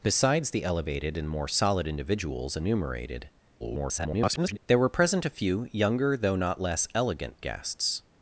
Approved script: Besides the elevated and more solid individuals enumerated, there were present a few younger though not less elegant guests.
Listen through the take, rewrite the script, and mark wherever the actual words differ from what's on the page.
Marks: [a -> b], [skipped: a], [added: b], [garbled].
Besides the elevated and more solid individuals enumerated, [garbled] there were present a few younger though not less elegant guests.